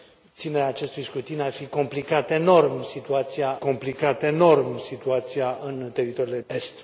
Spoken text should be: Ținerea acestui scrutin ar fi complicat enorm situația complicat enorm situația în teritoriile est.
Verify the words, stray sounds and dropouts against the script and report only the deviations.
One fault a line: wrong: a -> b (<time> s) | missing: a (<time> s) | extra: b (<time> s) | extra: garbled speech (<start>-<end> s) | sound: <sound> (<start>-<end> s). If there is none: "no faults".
no faults